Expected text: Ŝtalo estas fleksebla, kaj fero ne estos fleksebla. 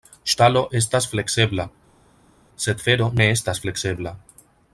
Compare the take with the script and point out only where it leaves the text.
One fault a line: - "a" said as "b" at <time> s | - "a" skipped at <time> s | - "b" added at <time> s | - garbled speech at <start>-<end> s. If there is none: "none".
- "kaj" said as "sed" at 2.7 s
- "estos" said as "estas" at 3.4 s